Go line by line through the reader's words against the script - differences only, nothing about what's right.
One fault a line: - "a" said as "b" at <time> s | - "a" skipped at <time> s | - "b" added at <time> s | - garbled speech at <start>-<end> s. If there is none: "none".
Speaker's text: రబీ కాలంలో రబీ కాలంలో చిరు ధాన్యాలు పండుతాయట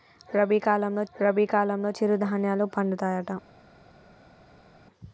none